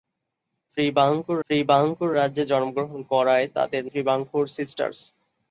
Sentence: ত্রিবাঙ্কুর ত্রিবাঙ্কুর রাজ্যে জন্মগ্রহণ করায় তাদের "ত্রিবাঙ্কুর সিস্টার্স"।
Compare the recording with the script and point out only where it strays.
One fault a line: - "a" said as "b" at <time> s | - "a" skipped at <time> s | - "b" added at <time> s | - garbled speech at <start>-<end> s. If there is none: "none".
none